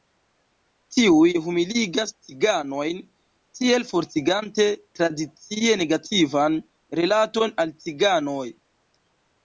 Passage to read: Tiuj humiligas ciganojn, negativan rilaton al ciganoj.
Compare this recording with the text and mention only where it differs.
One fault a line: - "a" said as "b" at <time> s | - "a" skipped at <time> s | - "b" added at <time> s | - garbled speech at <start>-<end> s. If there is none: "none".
- "tiel fortigante tradicie" added at 3.6 s